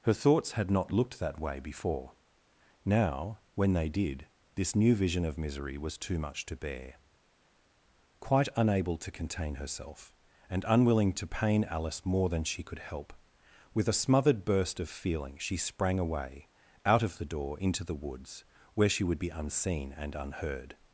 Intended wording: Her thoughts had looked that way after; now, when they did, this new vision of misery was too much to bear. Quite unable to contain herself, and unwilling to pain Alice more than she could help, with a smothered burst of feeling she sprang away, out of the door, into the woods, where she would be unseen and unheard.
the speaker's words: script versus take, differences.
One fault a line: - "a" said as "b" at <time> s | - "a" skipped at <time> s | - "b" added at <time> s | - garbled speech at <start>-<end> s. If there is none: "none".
- "not" added at 0.7 s
- "after" said as "before" at 1.6 s